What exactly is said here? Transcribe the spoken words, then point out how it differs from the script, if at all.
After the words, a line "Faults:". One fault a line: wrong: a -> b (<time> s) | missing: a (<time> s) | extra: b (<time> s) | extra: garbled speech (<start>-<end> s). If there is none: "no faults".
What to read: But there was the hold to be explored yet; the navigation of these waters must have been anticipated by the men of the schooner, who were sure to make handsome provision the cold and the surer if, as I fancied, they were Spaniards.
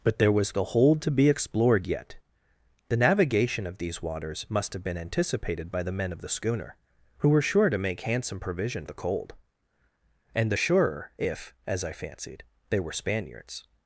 But there was the hold to be explored yet; the navigation of these waters must have been anticipated by the men of the schooner, who were sure to make handsome provision the cold and the surer if, as I fancied, they were Spaniards.
Faults:
no faults